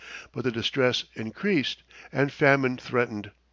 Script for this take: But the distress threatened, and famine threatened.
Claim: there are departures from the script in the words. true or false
true